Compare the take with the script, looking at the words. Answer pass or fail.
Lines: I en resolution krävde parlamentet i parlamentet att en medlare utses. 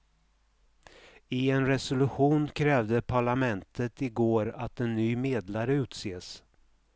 fail